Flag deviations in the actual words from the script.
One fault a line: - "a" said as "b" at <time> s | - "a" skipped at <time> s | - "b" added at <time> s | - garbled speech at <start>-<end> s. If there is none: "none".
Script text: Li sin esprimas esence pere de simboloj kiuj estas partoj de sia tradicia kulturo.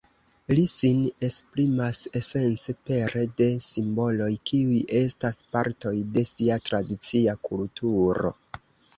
none